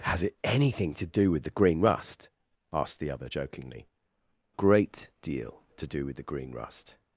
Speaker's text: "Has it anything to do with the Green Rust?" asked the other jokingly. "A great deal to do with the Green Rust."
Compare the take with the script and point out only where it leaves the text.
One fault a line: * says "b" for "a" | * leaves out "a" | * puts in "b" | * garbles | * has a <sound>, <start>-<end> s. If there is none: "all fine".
* leaves out "A"